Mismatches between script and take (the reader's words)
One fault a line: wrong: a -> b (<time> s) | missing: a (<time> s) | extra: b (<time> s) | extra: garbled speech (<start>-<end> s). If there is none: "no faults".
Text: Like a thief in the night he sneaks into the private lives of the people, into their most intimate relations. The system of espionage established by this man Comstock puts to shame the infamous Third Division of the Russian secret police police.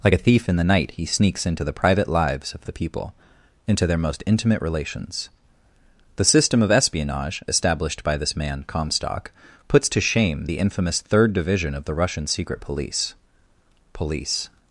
no faults